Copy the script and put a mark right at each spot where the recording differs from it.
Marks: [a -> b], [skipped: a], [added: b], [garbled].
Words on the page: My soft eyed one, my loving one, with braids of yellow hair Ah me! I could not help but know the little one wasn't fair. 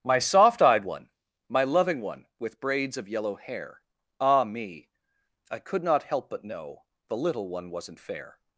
My soft eyed one, my loving one, with braids of yellow hair Ah me! I could not help but know the little one wasn't fair.